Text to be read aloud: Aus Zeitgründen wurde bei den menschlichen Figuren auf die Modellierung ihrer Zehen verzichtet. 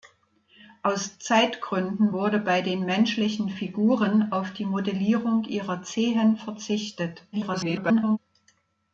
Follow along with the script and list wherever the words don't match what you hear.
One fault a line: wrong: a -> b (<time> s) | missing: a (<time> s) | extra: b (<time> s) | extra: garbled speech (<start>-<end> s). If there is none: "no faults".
extra: garbled speech (7.3-8.2 s)